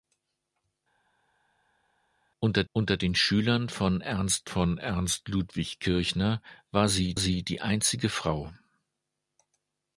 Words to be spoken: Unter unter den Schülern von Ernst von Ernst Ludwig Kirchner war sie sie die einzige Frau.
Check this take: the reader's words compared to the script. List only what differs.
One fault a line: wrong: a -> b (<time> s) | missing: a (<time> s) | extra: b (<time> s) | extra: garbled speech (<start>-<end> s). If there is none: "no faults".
no faults